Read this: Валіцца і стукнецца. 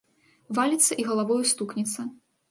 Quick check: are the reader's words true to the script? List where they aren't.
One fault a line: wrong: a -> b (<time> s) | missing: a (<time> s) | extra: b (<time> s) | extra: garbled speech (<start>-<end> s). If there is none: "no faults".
extra: галавою (1.1 s)